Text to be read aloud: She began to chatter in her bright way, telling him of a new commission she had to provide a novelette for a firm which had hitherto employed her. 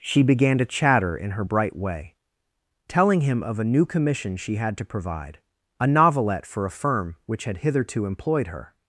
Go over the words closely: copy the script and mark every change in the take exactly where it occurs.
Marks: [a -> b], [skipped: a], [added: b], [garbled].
She began to chatter in her bright way, telling him of a new commission she had to provide a novelette for a firm which had hitherto employed her.